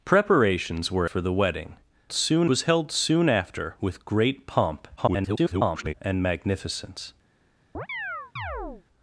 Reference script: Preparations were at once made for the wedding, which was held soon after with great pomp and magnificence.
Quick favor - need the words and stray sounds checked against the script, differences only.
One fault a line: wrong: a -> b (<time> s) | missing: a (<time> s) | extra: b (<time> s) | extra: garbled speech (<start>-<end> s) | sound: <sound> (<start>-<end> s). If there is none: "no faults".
missing: at once made (1.1 s)
wrong: which -> soon (2.1 s)
extra: garbled speech (5.0-5.9 s)
sound: chirp (7.7-8.8 s)